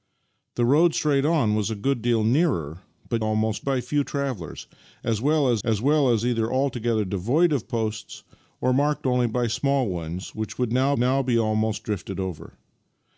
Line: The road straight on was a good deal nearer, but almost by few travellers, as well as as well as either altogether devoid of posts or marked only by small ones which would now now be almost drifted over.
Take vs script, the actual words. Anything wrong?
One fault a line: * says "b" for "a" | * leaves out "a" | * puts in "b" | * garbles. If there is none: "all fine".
all fine